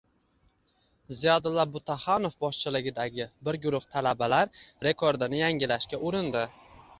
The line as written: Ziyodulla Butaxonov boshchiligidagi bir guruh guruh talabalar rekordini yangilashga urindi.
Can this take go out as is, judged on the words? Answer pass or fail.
fail